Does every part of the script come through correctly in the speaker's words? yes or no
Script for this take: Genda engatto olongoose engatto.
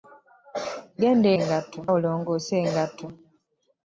yes